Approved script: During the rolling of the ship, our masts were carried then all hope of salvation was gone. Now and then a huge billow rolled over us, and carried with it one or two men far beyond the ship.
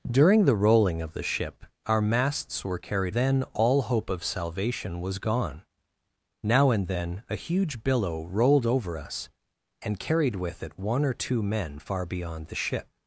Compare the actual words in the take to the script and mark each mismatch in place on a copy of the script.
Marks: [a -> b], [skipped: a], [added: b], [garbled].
During the rolling of the ship, our masts were carried then all hope of salvation was gone. Now and then a huge billow rolled over us, and carried with it one or two men far beyond the ship.